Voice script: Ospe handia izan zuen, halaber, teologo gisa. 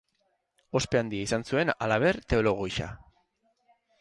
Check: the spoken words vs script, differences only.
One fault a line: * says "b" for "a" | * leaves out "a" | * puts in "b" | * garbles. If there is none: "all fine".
all fine